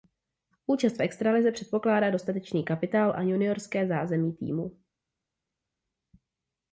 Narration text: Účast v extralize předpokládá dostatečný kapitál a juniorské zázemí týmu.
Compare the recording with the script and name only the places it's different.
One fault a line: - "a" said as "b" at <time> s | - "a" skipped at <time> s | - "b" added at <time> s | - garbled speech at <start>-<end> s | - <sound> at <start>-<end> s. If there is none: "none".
none